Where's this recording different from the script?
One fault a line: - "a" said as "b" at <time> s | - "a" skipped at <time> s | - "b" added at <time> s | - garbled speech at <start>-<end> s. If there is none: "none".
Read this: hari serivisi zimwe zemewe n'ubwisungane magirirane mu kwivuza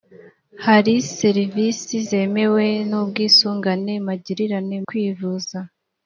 - "zimwe" skipped at 1.9 s
- "mu" skipped at 4.8 s